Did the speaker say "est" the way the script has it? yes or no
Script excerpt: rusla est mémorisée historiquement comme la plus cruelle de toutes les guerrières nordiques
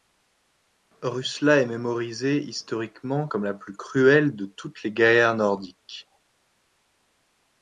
yes